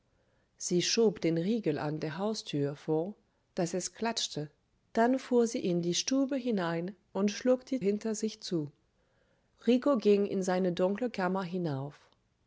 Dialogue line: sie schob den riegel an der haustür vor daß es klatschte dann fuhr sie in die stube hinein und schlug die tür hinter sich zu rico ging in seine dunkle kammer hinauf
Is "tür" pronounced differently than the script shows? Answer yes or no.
yes